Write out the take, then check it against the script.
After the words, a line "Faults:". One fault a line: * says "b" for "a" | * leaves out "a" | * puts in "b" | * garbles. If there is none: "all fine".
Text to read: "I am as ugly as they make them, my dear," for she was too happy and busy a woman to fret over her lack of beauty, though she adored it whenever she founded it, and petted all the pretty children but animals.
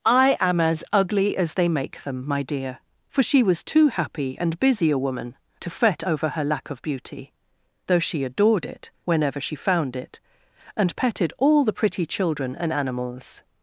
"I am as ugly as they make them, my dear," for she was too happy and busy a woman to fret over her lack of beauty, though she adored it whenever she found it, and petted all the pretty children and animals.
Faults:
* says "found" for "founded"
* says "and" for "but"